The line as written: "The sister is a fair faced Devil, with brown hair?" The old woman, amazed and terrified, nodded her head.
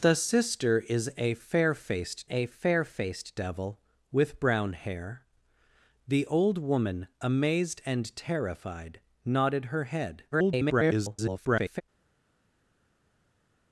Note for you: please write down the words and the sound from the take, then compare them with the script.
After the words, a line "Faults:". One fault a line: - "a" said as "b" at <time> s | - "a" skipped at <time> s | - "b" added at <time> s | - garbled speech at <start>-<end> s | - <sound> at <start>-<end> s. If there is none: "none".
"The sister is a fair faced a fair faced Devil, with brown hair?" The old woman, amazed and terrified, nodded her head. [garbled]
Faults:
- "a fair faced" added at 2.3 s
- garbled speech at 10.3-11.8 s